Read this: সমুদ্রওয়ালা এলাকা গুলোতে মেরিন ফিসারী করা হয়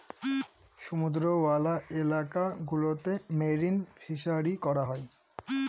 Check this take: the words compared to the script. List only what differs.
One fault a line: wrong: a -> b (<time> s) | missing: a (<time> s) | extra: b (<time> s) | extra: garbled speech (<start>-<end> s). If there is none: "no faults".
no faults